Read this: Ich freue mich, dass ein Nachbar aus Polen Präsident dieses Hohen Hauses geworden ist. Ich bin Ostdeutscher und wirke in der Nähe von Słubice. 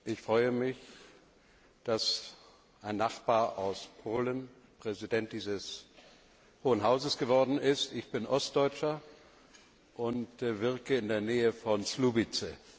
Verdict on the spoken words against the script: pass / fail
pass